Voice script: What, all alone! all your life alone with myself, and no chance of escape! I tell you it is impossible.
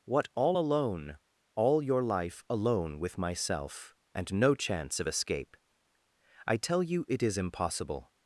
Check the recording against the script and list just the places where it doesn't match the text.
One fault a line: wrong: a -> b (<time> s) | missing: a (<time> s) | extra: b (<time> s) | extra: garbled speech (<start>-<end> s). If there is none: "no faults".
no faults